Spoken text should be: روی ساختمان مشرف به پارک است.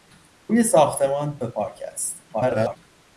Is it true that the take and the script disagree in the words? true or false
true